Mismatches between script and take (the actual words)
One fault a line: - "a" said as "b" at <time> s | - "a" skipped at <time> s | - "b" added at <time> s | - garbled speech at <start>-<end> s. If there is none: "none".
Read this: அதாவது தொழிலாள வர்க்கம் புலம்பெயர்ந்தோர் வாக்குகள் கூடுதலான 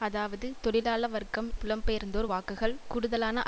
none